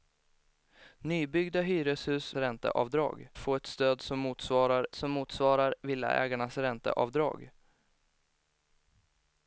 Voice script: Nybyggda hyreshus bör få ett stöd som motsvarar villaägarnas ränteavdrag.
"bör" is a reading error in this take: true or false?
true